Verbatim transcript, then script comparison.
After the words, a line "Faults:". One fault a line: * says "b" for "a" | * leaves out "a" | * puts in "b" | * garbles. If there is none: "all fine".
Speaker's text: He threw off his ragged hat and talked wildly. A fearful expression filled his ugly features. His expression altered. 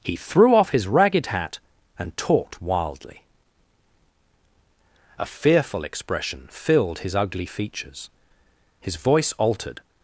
He threw off his ragged hat and talked wildly. A fearful expression filled his ugly features. His voice altered.
Faults:
* says "voice" for "expression"